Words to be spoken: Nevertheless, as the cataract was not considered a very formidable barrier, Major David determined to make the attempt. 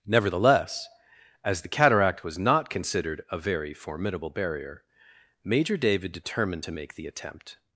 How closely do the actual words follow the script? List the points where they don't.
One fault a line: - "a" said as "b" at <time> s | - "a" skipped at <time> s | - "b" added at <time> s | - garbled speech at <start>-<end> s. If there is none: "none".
none